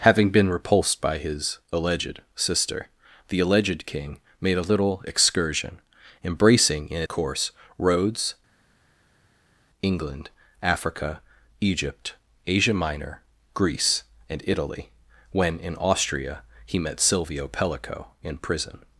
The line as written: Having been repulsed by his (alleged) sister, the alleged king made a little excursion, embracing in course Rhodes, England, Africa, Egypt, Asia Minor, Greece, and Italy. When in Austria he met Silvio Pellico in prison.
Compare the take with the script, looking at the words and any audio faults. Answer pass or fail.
pass